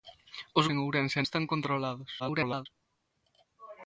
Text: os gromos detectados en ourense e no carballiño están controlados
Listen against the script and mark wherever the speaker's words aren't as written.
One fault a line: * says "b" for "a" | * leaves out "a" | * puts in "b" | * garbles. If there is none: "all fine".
* leaves out "gromos detectados"
* leaves out "no carballiño"
* garbles